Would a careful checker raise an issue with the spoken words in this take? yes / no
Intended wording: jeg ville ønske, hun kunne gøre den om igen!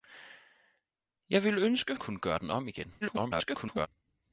yes